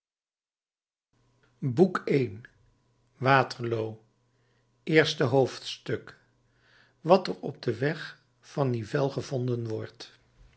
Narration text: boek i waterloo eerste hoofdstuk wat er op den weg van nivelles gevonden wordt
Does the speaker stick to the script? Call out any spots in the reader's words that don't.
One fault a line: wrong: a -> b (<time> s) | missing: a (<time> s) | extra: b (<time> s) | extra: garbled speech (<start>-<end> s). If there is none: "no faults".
no faults